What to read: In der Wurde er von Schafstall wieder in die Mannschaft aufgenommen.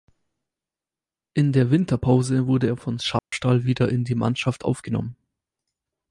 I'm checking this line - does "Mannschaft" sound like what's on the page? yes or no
yes